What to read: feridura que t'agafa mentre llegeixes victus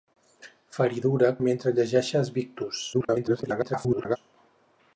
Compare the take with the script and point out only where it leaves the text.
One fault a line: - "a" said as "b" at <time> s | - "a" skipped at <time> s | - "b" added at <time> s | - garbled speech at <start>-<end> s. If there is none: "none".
- "que t'agafa" skipped at 1.3 s
- garbled speech at 2.9-4.2 s